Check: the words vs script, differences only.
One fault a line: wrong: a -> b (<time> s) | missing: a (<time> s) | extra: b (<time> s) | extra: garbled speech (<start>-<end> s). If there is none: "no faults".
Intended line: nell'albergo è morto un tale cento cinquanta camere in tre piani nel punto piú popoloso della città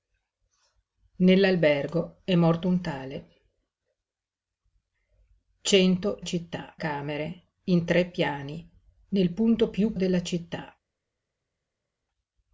wrong: cinquanta -> città (6.2 s)
missing: popoloso (9.9 s)